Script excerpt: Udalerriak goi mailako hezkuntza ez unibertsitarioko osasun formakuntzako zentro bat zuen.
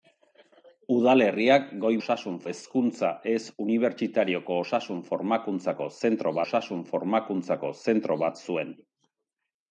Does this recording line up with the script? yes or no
no